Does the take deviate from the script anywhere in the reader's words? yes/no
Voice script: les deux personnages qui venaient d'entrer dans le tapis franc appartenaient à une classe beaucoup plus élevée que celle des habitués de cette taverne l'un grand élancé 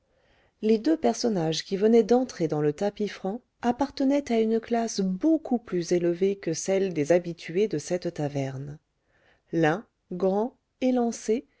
no